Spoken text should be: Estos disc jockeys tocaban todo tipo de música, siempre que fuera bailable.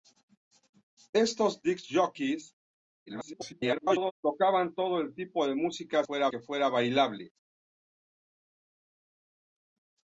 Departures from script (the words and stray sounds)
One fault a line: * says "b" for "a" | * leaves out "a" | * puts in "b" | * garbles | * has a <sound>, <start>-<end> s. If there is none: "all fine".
* garbles
* says "fuera" for "siempre"